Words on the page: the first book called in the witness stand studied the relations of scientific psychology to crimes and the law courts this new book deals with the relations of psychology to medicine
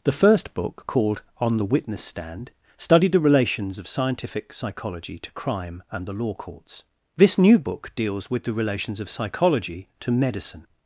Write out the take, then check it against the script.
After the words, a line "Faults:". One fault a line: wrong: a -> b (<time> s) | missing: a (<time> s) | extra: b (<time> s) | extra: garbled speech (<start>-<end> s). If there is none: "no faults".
the first book called on the witness stand studied the relations of scientific psychology to crime and the law courts this new book deals with the relations of psychology to medicine
Faults:
wrong: in -> on (1.4 s)
wrong: crimes -> crime (5.3 s)